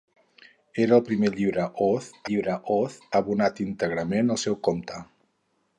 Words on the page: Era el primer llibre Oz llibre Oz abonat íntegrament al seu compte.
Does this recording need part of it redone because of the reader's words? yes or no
no